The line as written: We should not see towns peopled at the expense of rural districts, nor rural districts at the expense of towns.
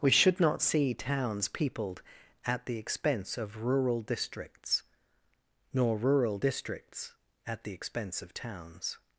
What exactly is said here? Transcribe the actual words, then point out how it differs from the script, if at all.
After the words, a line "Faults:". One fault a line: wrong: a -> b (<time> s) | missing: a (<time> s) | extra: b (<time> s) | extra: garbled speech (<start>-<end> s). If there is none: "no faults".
We should not see towns peopled at the expense of rural districts, nor rural districts at the expense of towns.
Faults:
no faults